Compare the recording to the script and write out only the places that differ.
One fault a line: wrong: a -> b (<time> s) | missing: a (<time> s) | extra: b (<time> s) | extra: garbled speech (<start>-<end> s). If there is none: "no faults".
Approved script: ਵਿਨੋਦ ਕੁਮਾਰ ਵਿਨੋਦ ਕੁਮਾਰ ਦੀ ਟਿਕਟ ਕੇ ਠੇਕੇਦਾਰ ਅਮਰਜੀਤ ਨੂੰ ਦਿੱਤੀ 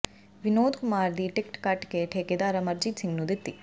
missing: ਵਿਨੋਦ ਕੁਮਾਰ (1.1 s)
extra: ਕੱਟ (1.6 s)
extra: ਸਿੰਘ (3.0 s)